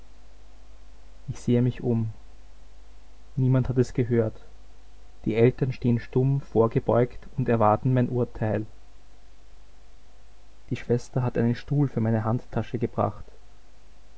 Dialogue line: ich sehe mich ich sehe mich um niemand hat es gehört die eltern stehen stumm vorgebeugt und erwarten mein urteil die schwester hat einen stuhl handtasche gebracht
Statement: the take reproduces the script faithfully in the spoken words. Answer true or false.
false